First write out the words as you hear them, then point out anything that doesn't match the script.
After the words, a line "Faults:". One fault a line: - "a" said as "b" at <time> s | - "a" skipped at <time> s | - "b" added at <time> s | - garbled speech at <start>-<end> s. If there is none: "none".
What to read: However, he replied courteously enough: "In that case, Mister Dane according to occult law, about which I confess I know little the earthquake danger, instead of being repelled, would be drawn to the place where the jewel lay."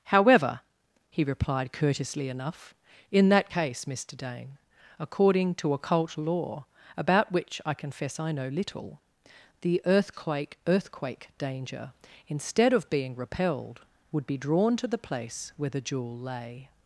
However, he replied courteously enough: "In that case, Mister Dane according to occult law, about which I confess I know little the earthquake earthquake danger, instead of being repelled, would be drawn to the place where the jewel lay."
Faults:
- "earthquake" added at 10.7 s